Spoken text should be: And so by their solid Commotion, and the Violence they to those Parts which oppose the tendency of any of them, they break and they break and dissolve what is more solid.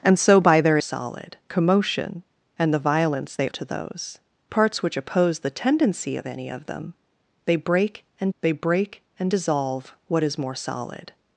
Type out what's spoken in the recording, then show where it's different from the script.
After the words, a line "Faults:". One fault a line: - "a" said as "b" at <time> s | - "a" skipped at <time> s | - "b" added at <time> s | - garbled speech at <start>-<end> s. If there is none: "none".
And so by their solid Commotion, and the Violence they to those Parts which oppose the tendency of any of them, they break and they break and dissolve what is more solid.
Faults:
none